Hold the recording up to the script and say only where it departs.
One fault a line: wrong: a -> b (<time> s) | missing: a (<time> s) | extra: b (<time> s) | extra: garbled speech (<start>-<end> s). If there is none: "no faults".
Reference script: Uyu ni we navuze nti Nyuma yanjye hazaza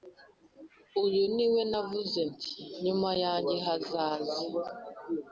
no faults